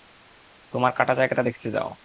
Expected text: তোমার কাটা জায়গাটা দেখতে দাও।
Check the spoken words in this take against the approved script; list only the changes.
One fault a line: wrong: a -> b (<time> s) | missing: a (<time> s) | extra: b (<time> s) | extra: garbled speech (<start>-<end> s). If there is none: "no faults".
no faults